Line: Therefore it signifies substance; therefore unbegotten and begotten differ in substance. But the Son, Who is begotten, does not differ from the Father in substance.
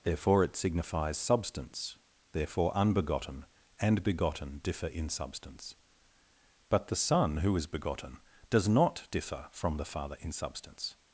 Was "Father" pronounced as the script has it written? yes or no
yes